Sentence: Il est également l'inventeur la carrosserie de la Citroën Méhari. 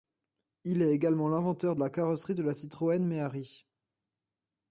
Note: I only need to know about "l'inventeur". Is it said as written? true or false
true